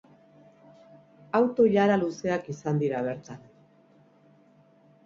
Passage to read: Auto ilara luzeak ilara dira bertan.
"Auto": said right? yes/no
yes